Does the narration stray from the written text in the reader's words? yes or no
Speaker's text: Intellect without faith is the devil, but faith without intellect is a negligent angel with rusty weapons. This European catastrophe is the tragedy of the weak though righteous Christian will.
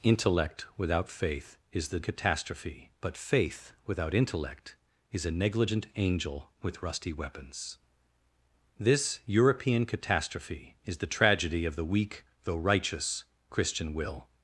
yes